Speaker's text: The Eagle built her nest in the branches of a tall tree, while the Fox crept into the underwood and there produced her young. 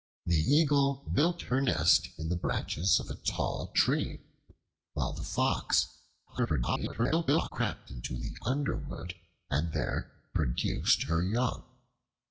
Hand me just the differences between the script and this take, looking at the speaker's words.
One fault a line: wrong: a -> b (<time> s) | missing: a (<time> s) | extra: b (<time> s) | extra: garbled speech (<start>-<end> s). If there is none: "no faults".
extra: garbled speech (6.3-7.5 s)